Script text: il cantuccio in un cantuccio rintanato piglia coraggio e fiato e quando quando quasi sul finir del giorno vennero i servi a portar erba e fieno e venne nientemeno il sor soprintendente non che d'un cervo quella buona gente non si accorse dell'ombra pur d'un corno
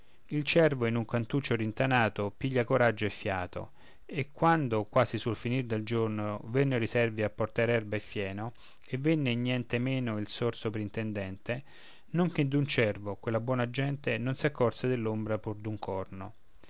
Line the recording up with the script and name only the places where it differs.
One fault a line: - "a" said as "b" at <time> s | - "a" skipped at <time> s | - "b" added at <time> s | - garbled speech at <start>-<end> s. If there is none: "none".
- "cantuccio" said as "cervo" at 0.4 s
- "quando" skipped at 4.8 s